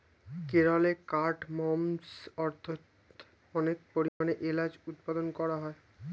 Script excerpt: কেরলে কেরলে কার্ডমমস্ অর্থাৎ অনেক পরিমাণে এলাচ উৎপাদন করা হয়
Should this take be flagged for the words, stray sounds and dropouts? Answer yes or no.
yes